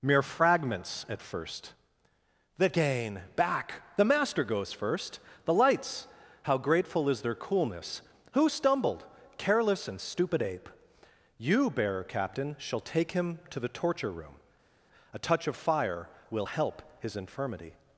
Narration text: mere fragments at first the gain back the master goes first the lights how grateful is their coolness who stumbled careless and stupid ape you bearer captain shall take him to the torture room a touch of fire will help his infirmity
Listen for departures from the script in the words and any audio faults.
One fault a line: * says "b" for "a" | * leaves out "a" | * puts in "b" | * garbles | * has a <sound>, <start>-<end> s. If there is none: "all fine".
all fine